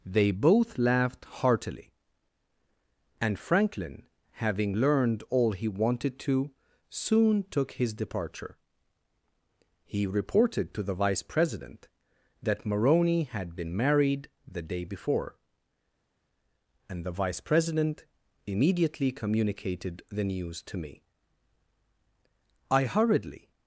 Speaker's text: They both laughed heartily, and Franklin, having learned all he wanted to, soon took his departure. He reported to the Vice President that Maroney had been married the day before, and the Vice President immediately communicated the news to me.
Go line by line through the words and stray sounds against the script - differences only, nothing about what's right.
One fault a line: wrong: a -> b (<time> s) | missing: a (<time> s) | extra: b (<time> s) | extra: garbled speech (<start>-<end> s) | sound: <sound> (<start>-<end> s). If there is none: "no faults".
extra: I hurriedly (22.7 s)